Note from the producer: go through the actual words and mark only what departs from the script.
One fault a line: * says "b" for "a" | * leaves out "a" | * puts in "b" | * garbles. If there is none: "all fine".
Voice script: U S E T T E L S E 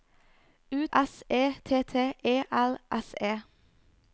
all fine